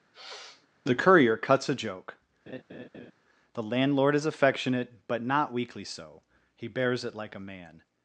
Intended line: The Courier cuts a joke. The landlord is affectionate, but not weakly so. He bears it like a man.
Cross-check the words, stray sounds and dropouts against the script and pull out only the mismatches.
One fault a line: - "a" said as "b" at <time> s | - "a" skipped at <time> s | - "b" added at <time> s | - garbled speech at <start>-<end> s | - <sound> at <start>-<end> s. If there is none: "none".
- sniff at 0.1-0.7 s
- laugh at 2.5-3.1 s